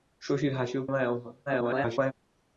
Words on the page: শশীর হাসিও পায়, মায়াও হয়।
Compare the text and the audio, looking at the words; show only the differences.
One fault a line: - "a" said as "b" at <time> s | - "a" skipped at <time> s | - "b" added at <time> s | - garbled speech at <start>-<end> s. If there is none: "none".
- "পায়" skipped at 0.8 s
- garbled speech at 1.5-2.1 s